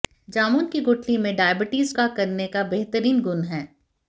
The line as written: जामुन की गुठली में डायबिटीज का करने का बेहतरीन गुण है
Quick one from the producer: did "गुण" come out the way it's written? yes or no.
yes